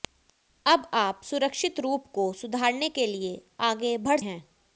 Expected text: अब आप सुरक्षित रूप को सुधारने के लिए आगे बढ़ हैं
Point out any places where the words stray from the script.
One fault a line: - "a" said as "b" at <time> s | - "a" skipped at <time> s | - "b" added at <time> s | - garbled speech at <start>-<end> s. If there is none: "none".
none